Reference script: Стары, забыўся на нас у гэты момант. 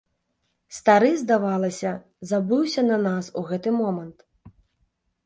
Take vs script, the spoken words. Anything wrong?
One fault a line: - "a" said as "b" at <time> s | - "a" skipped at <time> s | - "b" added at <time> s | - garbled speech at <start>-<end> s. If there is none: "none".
- "здавалася" added at 1.2 s